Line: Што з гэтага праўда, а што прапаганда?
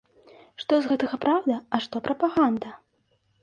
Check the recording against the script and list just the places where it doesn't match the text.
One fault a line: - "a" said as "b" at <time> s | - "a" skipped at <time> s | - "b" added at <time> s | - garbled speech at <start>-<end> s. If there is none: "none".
none